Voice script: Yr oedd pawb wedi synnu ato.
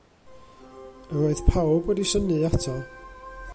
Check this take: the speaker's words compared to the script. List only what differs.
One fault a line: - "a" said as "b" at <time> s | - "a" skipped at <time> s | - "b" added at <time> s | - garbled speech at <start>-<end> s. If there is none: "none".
none